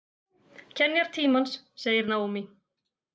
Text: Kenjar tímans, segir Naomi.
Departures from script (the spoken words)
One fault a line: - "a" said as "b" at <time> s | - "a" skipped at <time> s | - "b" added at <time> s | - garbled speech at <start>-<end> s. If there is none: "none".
none